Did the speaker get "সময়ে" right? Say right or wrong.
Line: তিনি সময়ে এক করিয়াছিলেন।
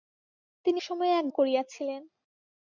right